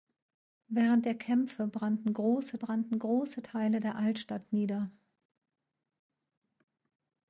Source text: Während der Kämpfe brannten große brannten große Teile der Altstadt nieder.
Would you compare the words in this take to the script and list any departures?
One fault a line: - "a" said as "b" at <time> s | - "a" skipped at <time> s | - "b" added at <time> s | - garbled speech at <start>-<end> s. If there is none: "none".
none